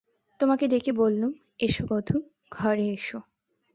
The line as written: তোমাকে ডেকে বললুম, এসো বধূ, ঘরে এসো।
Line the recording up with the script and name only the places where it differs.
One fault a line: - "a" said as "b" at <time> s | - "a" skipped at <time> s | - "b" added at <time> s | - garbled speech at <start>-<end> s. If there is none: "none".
none